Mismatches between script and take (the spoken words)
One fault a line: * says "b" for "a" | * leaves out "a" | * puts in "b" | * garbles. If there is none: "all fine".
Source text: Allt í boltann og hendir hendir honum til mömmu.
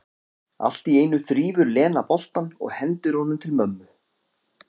* puts in "einu þrífur Lena"
* leaves out "hendir"